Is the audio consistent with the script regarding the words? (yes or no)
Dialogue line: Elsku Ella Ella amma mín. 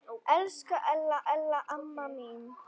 yes